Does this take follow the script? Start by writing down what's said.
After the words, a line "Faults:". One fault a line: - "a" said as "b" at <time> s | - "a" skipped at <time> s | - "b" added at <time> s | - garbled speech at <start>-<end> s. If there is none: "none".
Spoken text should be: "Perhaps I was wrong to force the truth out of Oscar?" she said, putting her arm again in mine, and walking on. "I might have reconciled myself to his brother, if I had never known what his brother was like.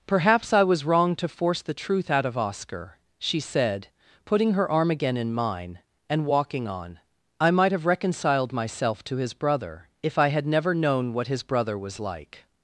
"Perhaps I was wrong to force the truth out of Oscar?" she said, putting her arm again in mine, and walking on. "I might have reconciled myself to his brother, if I had never known what his brother was like.
Faults:
none